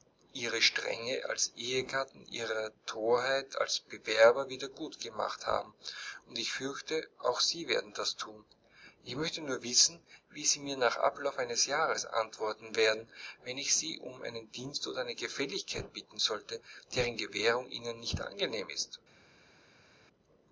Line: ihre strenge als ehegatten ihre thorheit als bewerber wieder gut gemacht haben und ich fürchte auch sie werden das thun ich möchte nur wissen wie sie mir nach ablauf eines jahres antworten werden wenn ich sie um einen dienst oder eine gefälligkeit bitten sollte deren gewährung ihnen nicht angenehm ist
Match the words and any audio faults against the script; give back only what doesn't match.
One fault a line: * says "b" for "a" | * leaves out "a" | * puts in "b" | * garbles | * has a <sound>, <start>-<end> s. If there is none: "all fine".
all fine